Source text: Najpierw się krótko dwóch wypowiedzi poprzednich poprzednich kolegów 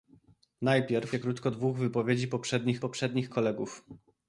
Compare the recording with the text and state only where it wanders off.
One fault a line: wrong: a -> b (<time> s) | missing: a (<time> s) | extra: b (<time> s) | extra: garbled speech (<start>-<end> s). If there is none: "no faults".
no faults